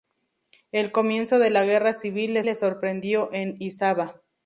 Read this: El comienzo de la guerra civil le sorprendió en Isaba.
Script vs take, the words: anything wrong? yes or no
yes